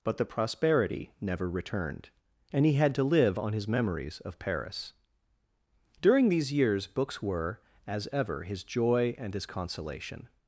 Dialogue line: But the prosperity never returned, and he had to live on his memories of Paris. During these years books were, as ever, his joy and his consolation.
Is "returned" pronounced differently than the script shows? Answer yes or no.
no